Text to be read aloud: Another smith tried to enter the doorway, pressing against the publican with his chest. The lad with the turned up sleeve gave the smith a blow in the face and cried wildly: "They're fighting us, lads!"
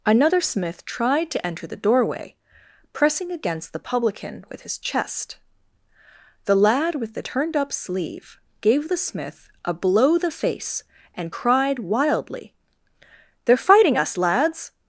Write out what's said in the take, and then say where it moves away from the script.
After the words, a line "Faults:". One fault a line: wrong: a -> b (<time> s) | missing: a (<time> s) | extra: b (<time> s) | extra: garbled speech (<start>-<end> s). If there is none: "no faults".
Another smith tried to enter the doorway, pressing against the publican with his chest. The lad with the turned up sleeve gave the smith a blow the face and cried wildly: "They're fighting us, lads!"
Faults:
missing: in (10.2 s)